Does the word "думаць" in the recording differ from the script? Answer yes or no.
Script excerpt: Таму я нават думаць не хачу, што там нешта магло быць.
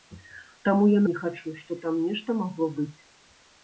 yes